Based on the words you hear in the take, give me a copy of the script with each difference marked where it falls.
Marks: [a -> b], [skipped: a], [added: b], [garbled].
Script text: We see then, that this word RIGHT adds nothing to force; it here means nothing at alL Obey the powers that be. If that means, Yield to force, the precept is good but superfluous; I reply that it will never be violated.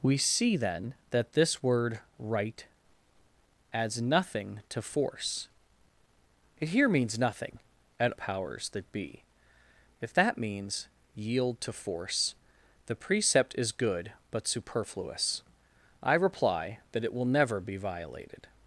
We see then, that this word RIGHT adds nothing to force; it here means nothing at [skipped: alL Obey the] powers that be. If that means, Yield to force, the precept is good but superfluous; I reply that it will never be violated.